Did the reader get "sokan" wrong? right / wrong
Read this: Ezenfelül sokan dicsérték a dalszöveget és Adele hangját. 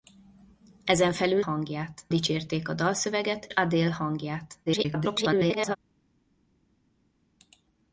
wrong